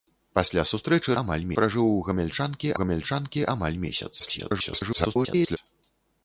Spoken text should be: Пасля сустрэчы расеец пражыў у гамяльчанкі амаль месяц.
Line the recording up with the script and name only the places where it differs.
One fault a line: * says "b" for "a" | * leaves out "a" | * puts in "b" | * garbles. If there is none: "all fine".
* says "амаль" for "расеец"
* puts in "гамяльчанкі"
* garbles